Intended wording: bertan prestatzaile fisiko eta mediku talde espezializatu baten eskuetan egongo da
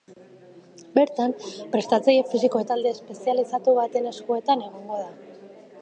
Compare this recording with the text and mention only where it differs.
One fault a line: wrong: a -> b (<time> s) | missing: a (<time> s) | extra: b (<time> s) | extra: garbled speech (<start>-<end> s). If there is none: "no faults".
missing: eta mediku (2.6 s)